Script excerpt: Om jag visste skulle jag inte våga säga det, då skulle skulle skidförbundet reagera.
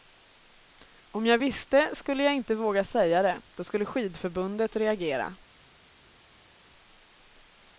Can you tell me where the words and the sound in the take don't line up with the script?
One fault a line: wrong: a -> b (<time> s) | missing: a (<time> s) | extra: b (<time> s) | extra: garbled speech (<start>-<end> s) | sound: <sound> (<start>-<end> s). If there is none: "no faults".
missing: skulle (3.9 s)